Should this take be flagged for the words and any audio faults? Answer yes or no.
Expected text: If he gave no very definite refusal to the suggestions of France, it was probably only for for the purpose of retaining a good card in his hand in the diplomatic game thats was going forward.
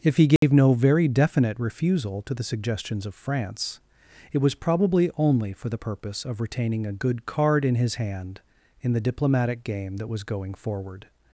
yes